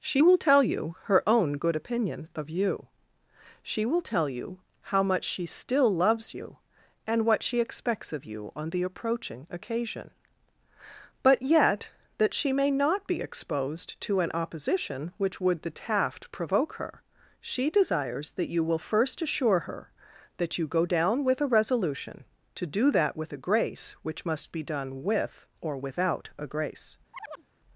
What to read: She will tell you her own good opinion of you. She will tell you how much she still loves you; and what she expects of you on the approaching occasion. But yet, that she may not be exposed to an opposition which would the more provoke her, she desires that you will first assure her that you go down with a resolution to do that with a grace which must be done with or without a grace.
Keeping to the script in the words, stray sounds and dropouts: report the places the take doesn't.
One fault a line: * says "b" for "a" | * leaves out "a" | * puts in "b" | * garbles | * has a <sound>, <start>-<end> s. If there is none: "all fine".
* says "taft" for "more"
* has a chirp, 27.1-27.5 s